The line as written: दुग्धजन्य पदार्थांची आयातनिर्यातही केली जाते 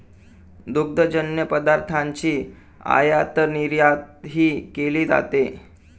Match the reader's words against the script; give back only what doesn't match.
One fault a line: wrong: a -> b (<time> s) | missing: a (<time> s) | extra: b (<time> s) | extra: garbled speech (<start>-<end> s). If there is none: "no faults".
no faults